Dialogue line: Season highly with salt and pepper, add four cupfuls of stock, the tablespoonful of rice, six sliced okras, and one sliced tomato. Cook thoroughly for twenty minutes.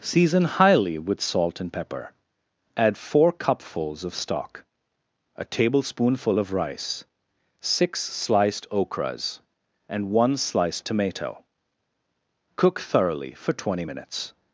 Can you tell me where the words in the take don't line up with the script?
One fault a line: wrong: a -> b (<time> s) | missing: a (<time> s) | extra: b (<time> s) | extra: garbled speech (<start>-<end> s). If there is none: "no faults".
wrong: the -> a (5.3 s)